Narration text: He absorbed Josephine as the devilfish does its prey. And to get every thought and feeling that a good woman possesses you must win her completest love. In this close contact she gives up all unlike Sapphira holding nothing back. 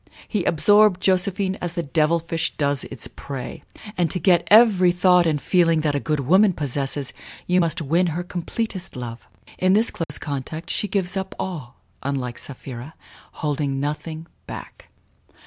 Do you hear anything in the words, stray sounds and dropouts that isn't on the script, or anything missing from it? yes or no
yes